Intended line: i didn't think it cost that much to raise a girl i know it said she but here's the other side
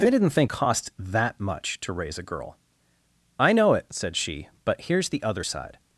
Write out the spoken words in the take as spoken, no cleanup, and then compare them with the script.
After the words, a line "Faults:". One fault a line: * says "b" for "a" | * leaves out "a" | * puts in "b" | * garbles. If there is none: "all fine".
i didn't think cost that much to raise a girl i know it said she but here's the other side
Faults:
* leaves out "it"